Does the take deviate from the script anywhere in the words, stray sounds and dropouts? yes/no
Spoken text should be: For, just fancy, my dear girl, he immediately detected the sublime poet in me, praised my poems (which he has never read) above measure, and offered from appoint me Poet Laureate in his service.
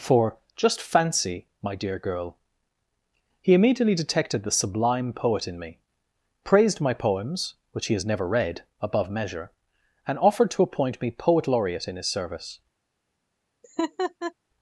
yes